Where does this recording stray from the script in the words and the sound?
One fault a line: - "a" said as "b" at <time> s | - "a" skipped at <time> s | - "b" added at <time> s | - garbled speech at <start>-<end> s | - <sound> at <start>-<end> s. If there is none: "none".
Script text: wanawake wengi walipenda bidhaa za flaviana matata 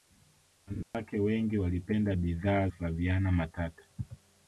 - dropout at 0.8-0.9 s
- "za" skipped at 2.7 s